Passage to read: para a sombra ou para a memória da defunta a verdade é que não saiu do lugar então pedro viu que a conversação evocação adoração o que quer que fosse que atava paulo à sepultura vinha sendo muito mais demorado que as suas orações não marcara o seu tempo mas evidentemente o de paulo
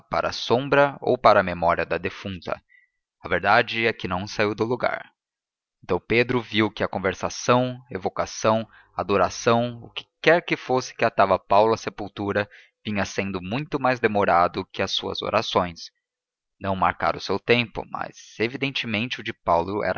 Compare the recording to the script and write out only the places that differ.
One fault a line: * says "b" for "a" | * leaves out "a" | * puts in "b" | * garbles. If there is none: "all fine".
all fine